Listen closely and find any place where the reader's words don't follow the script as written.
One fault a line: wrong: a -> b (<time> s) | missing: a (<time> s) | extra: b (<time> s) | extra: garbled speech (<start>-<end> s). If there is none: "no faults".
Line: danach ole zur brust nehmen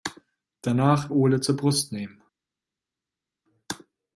no faults